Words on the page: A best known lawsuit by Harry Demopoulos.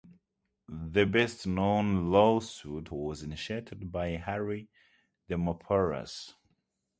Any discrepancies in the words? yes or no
yes